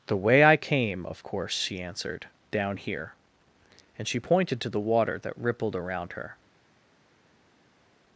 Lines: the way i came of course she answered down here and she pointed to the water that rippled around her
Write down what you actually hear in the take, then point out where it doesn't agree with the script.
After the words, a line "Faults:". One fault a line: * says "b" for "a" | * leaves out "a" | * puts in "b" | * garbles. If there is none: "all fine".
the way i came of course she answered down here and she pointed to the water that rippled around her
Faults:
all fine